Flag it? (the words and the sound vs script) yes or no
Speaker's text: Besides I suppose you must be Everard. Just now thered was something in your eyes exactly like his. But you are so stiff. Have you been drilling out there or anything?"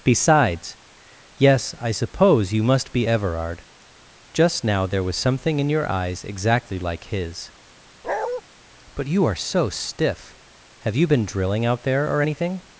yes